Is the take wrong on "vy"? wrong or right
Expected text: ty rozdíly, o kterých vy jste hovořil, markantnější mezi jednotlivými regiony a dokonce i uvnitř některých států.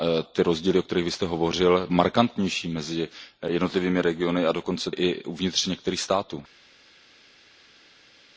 right